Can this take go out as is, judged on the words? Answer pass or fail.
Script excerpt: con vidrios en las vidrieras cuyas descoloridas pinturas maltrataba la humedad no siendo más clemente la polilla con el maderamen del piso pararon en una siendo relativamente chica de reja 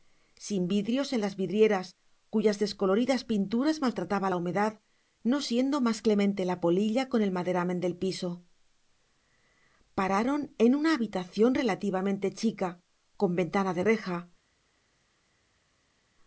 fail